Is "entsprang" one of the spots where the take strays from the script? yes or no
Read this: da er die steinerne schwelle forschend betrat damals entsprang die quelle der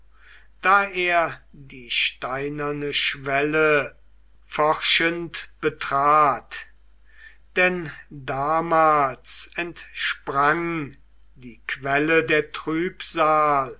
no